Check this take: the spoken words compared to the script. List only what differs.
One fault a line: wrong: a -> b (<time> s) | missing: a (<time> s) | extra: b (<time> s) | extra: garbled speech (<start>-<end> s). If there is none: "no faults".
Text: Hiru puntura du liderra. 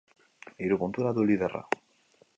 no faults